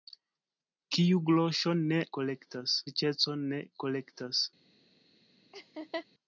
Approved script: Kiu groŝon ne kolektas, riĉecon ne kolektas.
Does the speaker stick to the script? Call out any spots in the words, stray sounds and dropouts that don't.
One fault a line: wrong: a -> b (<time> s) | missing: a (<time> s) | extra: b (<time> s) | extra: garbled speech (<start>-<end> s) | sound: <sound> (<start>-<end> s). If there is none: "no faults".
sound: laugh (5.5-6.1 s)